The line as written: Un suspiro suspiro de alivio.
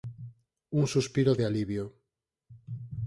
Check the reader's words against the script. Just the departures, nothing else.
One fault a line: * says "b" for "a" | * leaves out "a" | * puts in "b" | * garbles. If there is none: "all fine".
* leaves out "suspiro"